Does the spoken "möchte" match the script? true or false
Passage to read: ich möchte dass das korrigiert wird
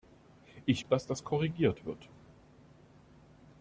false